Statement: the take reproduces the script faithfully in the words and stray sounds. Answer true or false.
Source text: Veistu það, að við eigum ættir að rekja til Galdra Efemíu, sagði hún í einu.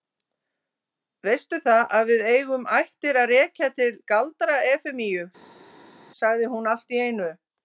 false